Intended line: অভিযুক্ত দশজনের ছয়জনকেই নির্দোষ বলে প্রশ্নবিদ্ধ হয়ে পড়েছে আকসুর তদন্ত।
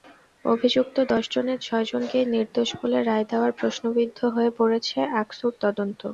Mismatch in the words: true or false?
true